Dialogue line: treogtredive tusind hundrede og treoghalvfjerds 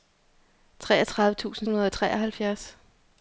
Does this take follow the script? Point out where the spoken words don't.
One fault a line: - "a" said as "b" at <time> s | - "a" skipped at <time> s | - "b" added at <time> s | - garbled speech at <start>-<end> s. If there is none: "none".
none